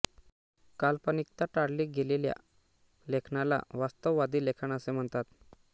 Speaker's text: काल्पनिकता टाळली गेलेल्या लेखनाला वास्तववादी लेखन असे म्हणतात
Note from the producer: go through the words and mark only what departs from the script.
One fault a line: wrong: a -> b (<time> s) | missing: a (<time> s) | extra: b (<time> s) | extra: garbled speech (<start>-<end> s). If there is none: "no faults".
no faults